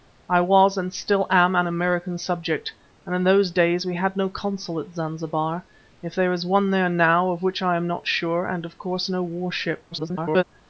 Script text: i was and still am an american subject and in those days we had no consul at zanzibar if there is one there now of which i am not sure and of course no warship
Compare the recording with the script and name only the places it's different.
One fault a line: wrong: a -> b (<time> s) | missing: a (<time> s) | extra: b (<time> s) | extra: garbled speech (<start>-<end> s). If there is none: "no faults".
extra: garbled speech (9.9-10.4 s)